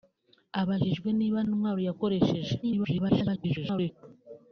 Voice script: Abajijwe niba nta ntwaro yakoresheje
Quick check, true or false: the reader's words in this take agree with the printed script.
false